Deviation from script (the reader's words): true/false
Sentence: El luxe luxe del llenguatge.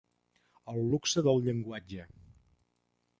true